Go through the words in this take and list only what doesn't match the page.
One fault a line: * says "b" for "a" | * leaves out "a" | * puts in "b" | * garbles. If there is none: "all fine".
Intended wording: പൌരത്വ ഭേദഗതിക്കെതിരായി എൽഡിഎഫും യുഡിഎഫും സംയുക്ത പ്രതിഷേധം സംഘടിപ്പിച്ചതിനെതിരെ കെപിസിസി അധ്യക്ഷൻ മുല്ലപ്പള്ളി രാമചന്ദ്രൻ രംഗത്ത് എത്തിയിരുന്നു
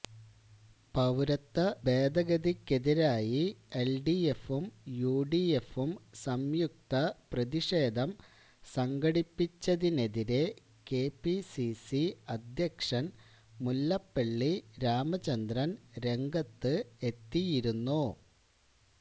all fine